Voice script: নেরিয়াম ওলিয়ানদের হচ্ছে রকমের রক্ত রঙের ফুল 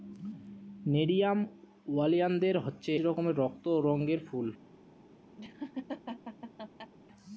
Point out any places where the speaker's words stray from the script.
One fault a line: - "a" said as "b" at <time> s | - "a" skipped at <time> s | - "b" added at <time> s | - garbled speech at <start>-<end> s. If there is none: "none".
none